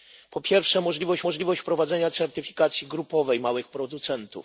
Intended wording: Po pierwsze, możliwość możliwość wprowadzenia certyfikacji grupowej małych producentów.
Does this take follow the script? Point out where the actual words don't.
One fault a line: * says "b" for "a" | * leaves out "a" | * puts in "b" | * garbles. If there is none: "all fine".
all fine